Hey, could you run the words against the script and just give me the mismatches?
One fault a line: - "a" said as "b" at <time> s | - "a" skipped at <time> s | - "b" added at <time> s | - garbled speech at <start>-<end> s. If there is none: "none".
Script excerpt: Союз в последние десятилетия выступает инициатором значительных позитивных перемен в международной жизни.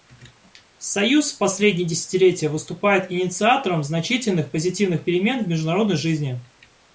none